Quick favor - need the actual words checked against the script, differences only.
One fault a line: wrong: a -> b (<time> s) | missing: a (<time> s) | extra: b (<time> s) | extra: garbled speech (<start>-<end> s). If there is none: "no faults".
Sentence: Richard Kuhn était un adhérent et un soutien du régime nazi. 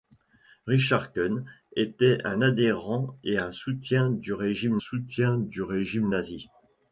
extra: soutien du régime (4.8 s)